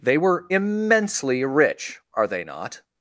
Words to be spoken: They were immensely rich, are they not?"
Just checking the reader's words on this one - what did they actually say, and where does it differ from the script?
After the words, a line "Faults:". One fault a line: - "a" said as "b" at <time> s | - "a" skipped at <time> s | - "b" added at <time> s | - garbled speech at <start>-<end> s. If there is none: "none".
They were immensely rich, are they not?"
Faults:
none